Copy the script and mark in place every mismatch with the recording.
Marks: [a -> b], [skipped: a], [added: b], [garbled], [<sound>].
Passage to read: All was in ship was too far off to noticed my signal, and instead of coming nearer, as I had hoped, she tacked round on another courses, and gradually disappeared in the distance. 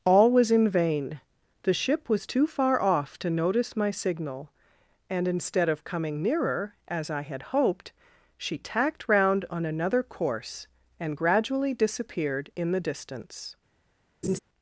All was in [added: vain the] ship was too far off to [noticed -> notice] my signal, and instead of coming nearer, as I had hoped, she tacked round on another [courses, -> course] and gradually disappeared in the distance. [laugh]